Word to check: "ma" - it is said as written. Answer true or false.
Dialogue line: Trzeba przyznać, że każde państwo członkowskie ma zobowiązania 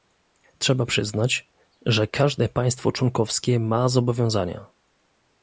true